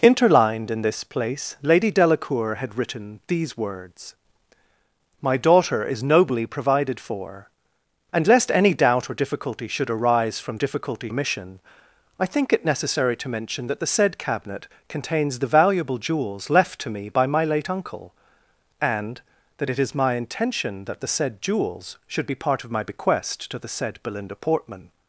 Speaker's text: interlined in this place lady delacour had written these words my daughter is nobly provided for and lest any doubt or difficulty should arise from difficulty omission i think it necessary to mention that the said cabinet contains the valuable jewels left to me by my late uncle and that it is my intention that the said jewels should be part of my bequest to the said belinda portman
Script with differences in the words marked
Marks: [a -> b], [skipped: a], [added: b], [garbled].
interlined in this place lady delacour had written these words my daughter is nobly provided for and lest any doubt or difficulty should arise from difficulty omission i think it necessary to mention that the said cabinet contains the valuable jewels left to me by my late uncle and that it is my intention that the said jewels should be part of my bequest to the said belinda portman